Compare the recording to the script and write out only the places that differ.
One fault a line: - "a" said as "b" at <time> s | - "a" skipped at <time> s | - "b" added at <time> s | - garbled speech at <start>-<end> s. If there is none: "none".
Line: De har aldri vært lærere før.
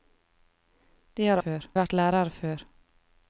- "aldri" said as "før" at 1.4 s